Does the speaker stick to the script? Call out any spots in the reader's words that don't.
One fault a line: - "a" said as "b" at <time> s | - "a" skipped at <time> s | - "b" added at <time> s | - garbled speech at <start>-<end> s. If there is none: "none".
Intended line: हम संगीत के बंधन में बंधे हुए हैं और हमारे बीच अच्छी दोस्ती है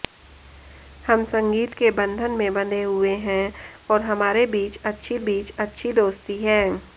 - "बीच अच्छी" added at 5.2 s